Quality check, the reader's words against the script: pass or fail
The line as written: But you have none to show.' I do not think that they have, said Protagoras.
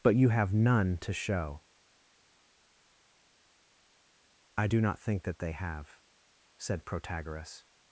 pass